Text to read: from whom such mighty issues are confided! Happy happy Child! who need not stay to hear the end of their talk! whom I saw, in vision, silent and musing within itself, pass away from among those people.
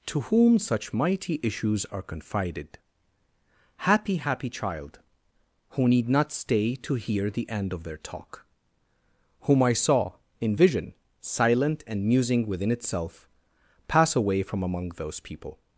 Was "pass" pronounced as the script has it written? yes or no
yes